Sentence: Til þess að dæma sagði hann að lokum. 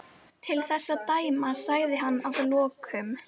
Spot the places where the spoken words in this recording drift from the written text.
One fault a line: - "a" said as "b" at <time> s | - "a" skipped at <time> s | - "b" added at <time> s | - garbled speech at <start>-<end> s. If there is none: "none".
none